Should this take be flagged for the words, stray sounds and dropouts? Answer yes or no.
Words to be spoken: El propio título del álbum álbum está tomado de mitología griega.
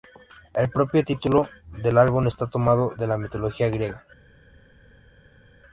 yes